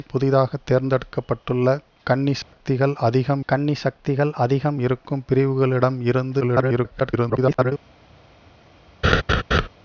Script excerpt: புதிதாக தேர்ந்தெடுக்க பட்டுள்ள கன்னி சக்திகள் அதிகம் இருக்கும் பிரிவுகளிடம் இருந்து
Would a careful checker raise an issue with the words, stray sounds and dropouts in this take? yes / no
yes